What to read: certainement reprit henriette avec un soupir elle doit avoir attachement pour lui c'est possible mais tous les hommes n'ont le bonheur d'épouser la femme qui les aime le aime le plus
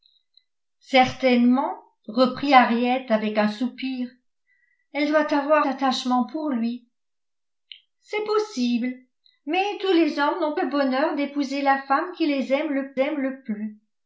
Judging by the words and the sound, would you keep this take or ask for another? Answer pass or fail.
pass